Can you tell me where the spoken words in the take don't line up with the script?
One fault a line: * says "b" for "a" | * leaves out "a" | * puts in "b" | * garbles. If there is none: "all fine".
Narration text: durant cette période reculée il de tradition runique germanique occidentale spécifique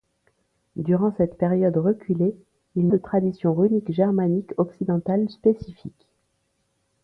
all fine